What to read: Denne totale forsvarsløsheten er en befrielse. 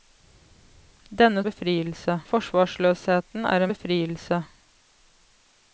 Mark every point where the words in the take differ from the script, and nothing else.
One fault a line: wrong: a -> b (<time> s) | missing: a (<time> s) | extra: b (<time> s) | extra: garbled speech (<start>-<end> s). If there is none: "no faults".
wrong: totale -> befrielse (1.5 s)
missing: en (3.7 s)